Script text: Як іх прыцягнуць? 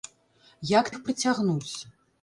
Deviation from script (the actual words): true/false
false